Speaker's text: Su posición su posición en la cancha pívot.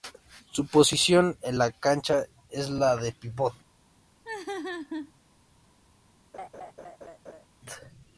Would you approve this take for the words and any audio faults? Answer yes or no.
no